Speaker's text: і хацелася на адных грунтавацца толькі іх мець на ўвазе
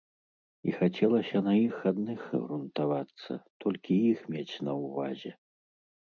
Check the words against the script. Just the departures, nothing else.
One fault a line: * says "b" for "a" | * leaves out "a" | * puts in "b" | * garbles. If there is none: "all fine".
* puts in "іх"